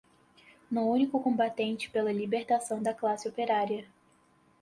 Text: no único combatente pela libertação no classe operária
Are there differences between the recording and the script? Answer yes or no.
yes